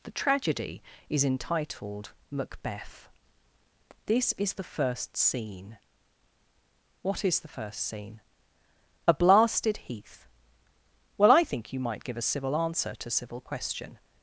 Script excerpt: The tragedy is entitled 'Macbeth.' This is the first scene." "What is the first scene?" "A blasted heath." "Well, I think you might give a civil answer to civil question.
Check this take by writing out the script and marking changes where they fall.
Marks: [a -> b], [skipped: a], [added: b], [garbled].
The tragedy is entitled 'Macbeth.' This is the first scene." "What is the first scene?" "A blasted heath." "Well, I think you might give a civil answer to civil question.